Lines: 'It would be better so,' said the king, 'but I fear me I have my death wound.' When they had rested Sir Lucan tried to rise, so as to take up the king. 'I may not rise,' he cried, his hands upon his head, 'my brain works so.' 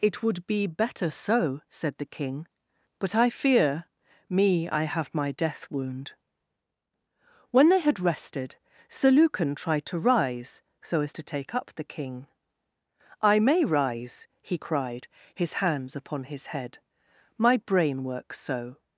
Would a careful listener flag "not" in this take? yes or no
yes